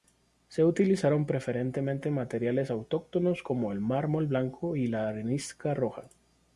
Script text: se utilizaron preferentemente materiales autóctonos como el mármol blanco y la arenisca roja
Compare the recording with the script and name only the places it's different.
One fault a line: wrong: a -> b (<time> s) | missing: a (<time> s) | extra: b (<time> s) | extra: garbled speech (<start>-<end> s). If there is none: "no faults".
no faults